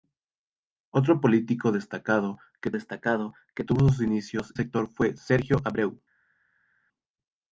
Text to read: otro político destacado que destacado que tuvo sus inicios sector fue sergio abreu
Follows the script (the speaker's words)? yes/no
yes